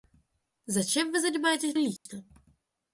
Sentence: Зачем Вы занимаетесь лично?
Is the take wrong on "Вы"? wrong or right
right